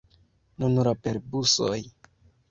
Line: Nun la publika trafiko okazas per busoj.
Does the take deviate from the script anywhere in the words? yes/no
yes